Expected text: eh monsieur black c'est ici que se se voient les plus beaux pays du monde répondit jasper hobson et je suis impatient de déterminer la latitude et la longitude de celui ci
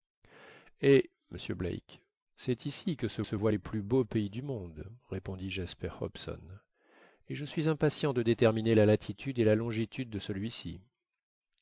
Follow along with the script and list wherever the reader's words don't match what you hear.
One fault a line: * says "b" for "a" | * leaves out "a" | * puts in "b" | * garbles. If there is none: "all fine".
all fine